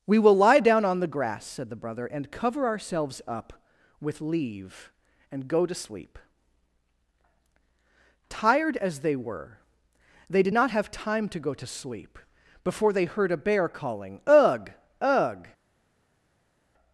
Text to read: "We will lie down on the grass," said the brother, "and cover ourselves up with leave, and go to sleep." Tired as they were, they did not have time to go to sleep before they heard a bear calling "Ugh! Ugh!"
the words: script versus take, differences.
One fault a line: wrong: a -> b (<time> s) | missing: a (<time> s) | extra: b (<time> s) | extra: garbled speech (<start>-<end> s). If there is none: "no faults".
no faults